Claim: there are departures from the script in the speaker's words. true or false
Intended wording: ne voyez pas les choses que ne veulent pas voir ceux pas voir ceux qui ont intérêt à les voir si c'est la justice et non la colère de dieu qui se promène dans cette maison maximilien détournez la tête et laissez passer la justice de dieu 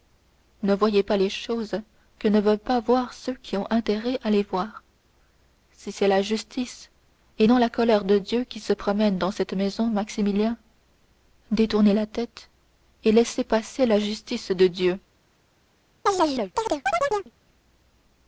true